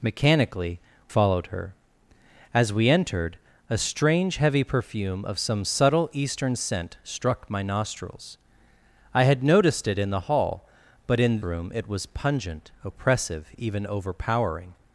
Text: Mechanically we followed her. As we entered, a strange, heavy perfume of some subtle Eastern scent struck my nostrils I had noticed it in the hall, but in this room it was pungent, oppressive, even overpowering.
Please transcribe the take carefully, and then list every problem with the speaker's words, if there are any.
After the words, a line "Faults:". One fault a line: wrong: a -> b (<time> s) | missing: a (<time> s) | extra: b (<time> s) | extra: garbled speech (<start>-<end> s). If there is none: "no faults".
Mechanically followed her. As we entered, a strange, heavy perfume of some subtle Eastern scent struck my nostrils I had noticed it in the hall, but in room it was pungent, oppressive, even overpowering.
Faults:
missing: we (0.8 s)
missing: this (11.4 s)